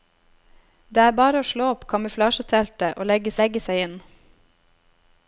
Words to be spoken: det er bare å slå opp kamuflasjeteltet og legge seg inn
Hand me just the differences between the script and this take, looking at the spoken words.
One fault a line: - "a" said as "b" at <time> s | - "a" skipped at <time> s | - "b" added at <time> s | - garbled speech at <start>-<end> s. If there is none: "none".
- "legge" added at 3.4 s